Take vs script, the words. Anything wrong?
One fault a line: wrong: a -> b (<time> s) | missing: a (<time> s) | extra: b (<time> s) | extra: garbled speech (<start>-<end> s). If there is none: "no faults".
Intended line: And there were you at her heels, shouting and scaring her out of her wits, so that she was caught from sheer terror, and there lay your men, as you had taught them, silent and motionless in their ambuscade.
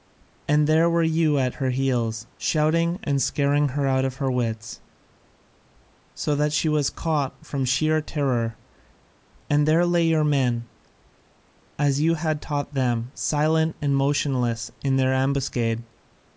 no faults